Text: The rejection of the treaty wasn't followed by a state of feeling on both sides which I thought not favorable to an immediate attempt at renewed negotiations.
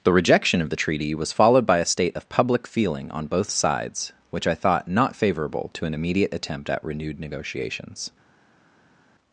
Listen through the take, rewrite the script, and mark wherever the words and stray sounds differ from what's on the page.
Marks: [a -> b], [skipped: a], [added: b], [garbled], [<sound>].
The rejection of the treaty [wasn't -> was] followed by a state of [added: public] feeling on both sides which I thought not favorable to an immediate attempt at renewed negotiations.